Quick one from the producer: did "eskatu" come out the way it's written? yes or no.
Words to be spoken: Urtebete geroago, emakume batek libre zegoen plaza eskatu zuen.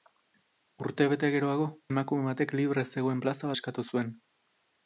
yes